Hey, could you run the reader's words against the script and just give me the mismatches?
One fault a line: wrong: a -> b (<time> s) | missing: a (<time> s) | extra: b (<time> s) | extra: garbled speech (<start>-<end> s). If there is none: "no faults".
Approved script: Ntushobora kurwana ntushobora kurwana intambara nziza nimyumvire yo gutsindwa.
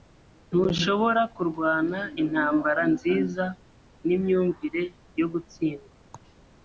missing: ntushobora kurwana (2.0 s)